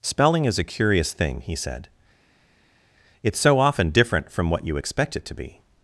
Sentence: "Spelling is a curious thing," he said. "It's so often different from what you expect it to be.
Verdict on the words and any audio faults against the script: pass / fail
pass